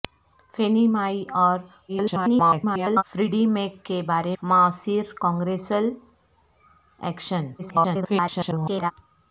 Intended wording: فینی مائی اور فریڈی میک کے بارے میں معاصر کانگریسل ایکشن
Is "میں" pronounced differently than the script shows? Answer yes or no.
yes